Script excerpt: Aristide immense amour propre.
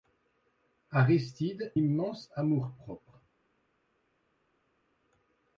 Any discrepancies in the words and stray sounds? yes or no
no